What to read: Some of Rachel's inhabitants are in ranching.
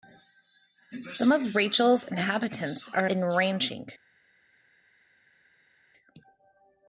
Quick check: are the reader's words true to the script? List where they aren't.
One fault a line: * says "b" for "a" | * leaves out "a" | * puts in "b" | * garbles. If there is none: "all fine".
all fine